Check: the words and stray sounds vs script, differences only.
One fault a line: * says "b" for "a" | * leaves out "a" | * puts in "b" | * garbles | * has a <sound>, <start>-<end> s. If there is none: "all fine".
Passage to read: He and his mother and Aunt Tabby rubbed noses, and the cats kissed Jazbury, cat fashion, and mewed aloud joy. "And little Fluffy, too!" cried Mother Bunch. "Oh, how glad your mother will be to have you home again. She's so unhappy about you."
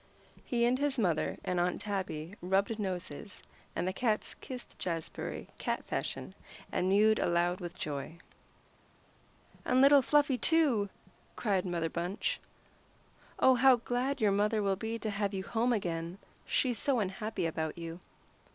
* puts in "with"